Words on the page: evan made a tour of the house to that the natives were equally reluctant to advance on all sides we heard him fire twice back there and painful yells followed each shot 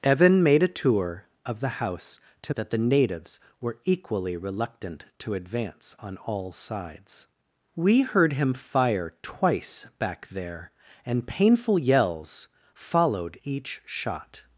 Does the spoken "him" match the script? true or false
true